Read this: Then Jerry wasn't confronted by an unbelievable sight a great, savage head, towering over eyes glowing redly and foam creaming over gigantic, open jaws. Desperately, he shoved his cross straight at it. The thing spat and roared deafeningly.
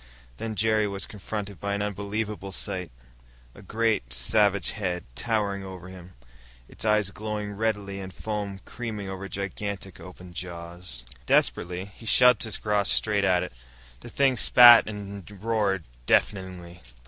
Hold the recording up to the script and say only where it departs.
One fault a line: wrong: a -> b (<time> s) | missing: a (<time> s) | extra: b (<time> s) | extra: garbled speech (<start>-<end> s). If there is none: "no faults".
wrong: wasn't -> was (0.9 s)
extra: him its (5.9 s)